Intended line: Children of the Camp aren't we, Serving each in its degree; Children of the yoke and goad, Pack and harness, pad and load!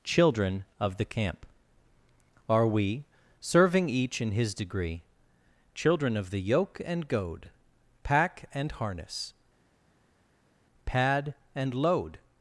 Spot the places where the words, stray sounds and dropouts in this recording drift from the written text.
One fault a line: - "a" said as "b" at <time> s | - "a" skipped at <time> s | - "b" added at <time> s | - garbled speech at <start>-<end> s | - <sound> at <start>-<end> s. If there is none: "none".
- "aren't" said as "are" at 2.5 s
- "its" said as "his" at 4.3 s